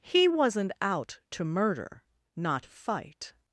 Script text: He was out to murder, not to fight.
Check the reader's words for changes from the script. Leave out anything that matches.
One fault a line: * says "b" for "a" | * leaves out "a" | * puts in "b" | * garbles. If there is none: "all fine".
* says "wasn't" for "was"
* leaves out "to"